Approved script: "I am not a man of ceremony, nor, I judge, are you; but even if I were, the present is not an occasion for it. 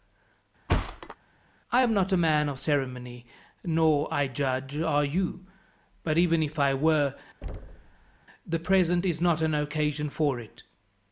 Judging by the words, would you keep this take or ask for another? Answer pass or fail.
pass